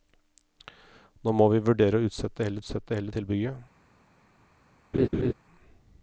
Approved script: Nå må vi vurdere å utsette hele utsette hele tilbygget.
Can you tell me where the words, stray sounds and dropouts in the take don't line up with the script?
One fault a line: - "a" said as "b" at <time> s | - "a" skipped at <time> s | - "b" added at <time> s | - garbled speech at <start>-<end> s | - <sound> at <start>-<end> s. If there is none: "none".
- laugh at 4.9-5.3 s